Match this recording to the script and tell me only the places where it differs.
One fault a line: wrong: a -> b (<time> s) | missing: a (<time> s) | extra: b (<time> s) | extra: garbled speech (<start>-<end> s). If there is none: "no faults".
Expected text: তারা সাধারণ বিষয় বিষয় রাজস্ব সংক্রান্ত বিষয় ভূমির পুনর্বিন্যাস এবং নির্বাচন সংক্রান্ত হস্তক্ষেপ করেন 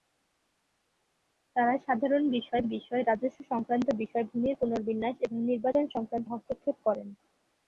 no faults